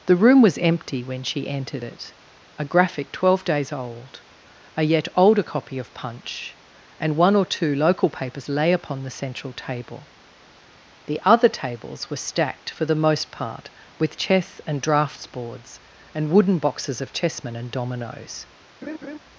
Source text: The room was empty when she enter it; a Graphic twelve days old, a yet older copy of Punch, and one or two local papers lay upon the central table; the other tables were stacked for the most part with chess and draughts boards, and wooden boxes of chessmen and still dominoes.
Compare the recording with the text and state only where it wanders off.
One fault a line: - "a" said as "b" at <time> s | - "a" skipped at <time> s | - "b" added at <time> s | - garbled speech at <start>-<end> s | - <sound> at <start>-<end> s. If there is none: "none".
- "enter" said as "entered" at 1.5 s
- "still" skipped at 17.7 s
- laugh at 18.8-19.2 s